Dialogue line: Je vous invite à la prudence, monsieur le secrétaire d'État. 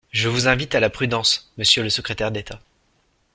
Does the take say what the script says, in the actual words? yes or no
yes